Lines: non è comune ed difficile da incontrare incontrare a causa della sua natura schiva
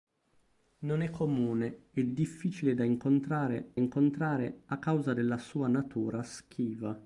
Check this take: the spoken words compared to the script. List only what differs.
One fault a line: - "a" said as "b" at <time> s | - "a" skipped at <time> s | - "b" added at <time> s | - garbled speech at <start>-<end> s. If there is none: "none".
none